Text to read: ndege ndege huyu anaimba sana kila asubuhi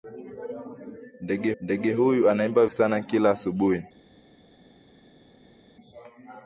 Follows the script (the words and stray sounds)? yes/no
yes